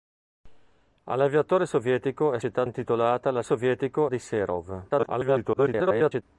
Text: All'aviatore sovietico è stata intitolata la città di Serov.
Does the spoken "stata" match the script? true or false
false